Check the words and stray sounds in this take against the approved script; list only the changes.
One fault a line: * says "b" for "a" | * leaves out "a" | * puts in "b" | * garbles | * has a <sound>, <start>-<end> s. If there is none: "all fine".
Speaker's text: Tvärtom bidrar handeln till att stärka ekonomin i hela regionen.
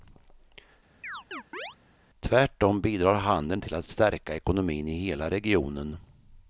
* has a chirp, 1.0-1.8 s